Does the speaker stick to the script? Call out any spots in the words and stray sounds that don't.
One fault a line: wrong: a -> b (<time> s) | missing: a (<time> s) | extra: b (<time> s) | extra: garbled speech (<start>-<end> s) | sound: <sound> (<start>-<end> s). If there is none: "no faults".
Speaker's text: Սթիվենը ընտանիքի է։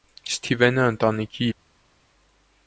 no faults